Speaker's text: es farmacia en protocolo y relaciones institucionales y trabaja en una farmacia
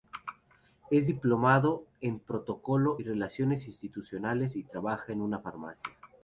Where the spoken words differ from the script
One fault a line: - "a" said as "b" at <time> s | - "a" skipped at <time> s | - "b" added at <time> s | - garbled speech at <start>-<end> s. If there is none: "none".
- "farmacia" said as "diplomado" at 1.0 s